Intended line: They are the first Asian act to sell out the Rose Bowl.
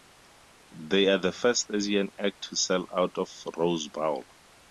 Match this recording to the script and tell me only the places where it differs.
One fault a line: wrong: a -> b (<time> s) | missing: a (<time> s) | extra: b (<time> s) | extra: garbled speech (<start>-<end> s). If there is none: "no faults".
no faults